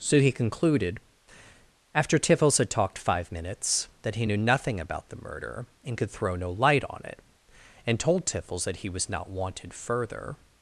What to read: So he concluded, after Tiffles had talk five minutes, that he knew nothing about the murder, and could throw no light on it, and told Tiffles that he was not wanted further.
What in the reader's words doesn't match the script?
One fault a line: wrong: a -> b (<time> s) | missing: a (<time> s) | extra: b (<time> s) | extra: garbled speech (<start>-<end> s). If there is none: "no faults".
wrong: talk -> talked (2.7 s)